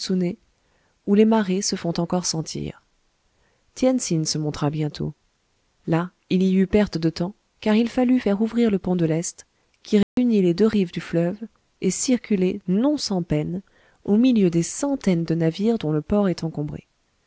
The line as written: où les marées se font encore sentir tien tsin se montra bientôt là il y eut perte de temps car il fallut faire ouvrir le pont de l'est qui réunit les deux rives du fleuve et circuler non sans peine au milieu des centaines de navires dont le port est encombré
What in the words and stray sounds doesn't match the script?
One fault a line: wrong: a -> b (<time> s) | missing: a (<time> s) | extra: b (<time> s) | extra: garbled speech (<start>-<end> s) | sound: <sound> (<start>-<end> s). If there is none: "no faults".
sound: dropout (10.0-10.2 s)